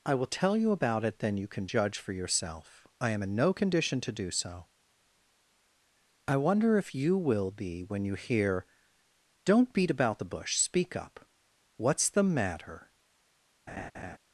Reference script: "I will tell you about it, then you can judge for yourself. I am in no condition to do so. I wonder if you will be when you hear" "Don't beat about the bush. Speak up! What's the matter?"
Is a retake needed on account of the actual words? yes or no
no